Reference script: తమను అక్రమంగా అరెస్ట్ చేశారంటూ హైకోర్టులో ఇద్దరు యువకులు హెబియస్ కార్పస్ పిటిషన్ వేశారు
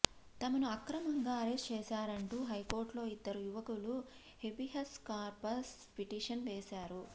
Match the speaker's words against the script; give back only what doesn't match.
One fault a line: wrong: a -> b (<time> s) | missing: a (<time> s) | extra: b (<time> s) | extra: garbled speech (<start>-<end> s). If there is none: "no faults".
no faults